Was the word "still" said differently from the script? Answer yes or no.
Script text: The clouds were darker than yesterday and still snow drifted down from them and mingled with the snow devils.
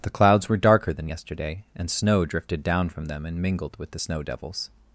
yes